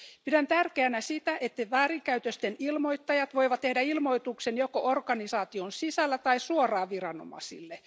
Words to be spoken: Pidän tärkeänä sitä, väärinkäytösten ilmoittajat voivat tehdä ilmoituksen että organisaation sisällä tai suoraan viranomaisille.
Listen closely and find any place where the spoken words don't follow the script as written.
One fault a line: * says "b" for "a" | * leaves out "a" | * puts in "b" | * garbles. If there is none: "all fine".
* puts in "että"
* says "joko" for "että"